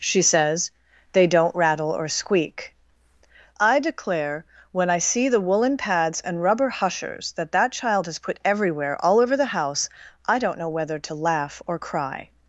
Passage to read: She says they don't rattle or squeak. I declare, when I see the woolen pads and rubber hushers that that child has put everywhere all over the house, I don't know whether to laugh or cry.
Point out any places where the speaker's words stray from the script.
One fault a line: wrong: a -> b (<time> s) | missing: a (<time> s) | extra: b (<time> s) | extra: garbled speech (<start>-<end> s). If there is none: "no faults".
no faults